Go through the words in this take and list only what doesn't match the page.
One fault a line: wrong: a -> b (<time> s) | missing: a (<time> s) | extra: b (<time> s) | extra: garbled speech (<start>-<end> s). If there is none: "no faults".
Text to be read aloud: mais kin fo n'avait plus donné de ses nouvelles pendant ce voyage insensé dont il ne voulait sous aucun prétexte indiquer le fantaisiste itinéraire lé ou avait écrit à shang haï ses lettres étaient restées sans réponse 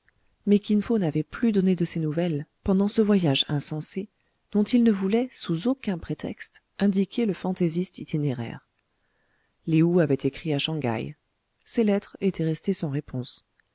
no faults